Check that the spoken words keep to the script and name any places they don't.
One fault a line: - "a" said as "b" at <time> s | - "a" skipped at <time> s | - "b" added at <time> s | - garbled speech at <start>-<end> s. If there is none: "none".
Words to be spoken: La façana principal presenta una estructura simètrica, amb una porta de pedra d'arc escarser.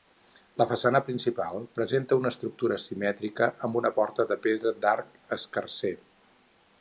none